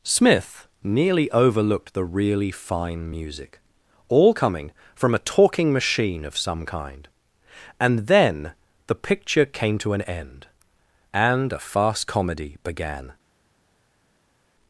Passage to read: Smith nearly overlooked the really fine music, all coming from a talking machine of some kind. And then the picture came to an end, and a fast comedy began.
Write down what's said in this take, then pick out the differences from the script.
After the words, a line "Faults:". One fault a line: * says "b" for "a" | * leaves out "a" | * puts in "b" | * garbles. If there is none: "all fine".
Smith nearly overlooked the really fine music, all coming from a talking machine of some kind. And then the picture came to an end, and a fast comedy began.
Faults:
all fine